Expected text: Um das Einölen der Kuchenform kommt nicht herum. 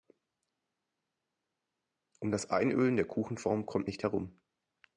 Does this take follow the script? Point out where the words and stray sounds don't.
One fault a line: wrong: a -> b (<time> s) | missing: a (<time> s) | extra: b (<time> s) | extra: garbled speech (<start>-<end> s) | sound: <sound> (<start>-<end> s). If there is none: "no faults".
no faults